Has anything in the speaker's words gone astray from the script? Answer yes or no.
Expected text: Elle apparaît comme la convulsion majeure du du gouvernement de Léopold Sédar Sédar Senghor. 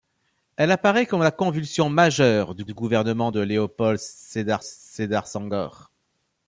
no